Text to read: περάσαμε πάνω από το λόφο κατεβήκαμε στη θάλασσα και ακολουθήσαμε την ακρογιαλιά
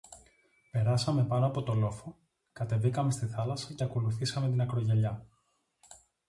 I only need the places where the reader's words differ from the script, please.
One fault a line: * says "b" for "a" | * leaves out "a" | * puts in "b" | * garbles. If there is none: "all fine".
all fine